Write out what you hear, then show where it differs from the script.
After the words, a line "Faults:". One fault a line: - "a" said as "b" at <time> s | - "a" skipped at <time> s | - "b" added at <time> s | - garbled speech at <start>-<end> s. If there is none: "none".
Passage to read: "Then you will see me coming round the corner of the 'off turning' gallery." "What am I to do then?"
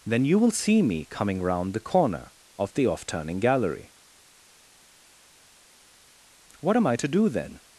"Then you will see me coming round the corner of the 'off turning' gallery." "What am I to do then?"
Faults:
none